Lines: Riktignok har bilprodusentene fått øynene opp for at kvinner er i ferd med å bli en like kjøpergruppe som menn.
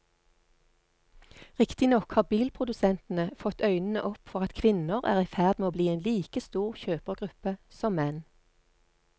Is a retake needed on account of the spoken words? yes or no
yes